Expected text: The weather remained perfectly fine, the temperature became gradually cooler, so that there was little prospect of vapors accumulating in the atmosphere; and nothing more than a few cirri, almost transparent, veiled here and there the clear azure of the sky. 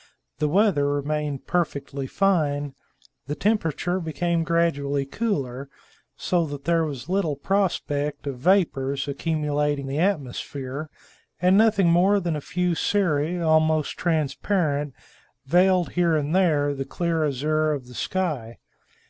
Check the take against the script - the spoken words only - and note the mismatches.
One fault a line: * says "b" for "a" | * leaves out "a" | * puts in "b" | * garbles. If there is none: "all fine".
* leaves out "in"